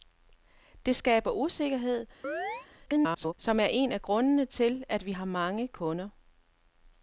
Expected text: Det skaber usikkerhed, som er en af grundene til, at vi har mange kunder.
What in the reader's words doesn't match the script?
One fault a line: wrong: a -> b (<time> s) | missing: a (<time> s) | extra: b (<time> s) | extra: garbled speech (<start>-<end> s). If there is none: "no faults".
extra: garbled speech (2.9-3.3 s)